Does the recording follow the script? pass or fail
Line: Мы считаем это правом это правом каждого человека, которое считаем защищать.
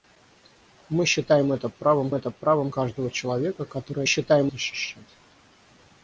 pass